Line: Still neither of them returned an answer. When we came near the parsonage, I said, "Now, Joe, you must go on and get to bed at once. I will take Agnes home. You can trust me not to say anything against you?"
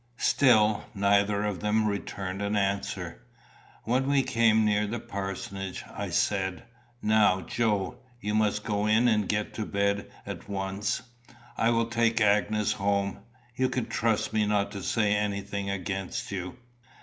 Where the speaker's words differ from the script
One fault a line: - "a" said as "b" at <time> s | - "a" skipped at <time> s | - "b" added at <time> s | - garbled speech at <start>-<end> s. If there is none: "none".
- "on" said as "in" at 8.9 s